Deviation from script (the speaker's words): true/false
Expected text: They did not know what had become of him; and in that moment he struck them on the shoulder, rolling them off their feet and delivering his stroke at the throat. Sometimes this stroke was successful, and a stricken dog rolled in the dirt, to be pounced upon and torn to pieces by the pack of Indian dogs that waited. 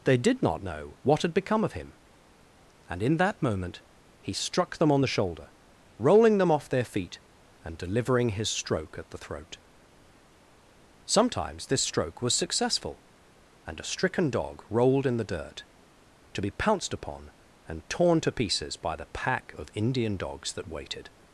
false